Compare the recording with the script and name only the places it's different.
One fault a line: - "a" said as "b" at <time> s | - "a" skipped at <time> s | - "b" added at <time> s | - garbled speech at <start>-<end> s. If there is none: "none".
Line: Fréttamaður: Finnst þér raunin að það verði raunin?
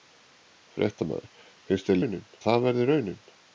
none